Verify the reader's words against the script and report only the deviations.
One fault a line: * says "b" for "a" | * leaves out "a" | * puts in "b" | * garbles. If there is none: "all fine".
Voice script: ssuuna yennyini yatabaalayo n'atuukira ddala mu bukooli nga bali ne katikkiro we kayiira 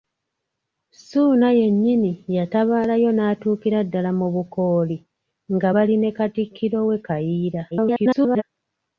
* garbles